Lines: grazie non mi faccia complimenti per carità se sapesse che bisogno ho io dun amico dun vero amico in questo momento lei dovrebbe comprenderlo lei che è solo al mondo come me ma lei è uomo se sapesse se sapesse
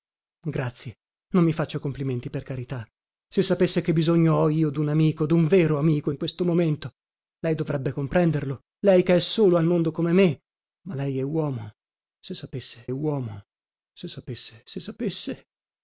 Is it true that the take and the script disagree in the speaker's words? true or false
true